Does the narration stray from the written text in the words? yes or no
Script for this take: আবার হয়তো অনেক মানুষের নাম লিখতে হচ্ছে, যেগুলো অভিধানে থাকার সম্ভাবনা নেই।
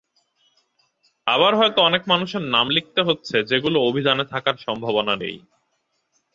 no